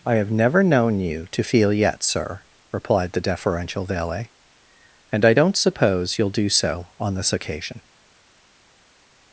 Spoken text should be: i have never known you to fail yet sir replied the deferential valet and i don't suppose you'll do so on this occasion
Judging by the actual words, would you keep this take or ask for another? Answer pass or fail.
fail